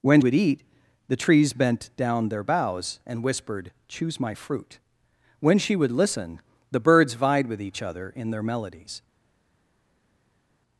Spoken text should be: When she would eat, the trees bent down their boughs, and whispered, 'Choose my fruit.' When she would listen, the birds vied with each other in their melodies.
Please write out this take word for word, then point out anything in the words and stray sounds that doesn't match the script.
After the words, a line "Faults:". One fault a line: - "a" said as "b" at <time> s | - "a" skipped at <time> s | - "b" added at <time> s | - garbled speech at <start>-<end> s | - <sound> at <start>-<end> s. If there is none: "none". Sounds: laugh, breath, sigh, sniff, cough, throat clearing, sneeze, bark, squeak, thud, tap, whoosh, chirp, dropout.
When would eat, the trees bent down their boughs, and whispered, 'Choose my fruit.' When she would listen, the birds vied with each other in their melodies.
Faults:
- "she" skipped at 0.2 s